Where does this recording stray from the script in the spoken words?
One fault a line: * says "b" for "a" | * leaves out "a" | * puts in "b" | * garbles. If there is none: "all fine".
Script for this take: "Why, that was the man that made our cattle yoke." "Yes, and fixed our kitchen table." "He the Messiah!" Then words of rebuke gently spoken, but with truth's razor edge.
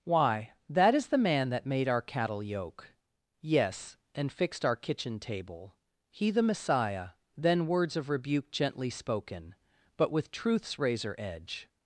* says "is" for "was"